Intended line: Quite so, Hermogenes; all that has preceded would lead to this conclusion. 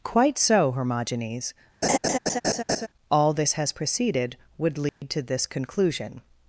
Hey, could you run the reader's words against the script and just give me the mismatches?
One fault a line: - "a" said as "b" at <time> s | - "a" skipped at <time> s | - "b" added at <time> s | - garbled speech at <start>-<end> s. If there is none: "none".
- "that" said as "this" at 3.3 s